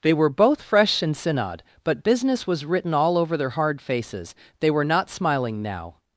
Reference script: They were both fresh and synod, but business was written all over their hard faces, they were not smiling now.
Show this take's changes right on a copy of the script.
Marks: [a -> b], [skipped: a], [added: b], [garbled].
They were both fresh and synod, but business was written all over their hard faces, they were not smiling now.